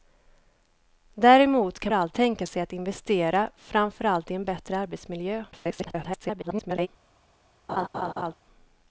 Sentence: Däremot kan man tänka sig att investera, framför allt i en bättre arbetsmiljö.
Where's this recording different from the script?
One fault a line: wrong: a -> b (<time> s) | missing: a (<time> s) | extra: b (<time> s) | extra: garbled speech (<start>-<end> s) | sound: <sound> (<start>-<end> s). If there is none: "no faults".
wrong: man -> allt (1.9 s)
extra: garbled speech (5.5-6.9 s)
sound: laugh (7.7-8.3 s)